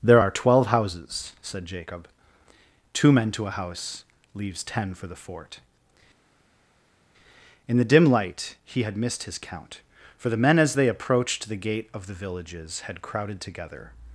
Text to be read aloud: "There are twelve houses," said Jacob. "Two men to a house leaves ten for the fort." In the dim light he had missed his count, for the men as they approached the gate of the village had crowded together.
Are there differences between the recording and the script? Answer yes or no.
yes